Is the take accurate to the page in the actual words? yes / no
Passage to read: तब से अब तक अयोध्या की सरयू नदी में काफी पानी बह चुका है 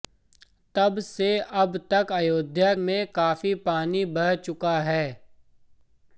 no